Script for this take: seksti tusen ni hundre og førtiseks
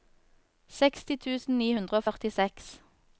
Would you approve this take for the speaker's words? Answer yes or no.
yes